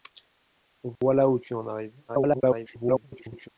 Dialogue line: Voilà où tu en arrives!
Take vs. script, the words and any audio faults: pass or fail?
fail